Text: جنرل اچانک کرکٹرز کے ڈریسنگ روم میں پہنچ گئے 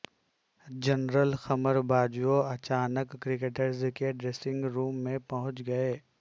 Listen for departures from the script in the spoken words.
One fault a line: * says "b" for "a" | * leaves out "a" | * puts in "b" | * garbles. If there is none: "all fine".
* puts in "قمر باجوہ"